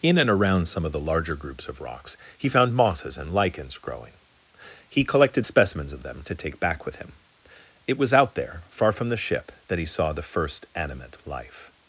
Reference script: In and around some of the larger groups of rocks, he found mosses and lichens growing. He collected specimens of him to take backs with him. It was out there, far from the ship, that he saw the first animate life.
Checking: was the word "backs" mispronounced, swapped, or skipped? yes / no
yes